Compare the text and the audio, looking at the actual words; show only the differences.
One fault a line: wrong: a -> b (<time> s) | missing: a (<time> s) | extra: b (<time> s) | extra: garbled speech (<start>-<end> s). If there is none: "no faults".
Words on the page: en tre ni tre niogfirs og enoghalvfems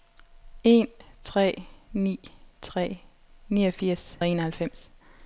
no faults